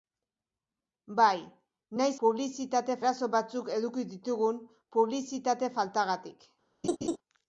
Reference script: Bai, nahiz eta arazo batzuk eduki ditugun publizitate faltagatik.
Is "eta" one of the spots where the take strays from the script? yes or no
yes